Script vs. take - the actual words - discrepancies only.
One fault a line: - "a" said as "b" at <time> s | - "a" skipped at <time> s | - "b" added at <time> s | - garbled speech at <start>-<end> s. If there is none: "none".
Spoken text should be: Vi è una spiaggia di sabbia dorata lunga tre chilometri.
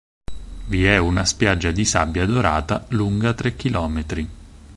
none